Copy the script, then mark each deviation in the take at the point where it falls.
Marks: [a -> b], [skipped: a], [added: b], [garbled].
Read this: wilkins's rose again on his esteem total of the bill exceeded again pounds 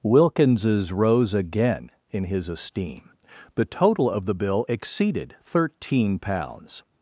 wilkins's rose again [on -> in] his esteem [added: the] total of the bill exceeded [again -> thirteen] pounds